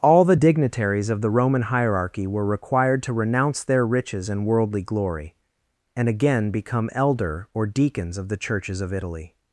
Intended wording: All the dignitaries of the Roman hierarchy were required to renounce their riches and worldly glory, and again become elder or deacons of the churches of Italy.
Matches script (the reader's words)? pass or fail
pass